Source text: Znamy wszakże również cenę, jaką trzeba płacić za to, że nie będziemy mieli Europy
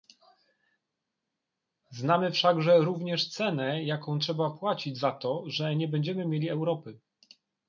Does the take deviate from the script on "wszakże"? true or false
false